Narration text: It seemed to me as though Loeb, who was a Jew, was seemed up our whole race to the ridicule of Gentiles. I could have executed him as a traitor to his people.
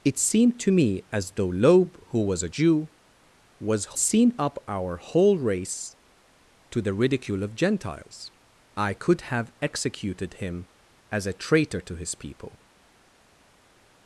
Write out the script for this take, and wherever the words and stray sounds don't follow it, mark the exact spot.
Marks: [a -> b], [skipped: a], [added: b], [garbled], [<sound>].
It seemed to me as though Loeb, who was a Jew, was seemed up our whole race to the ridicule of Gentiles. I could have executed him as a traitor to his people.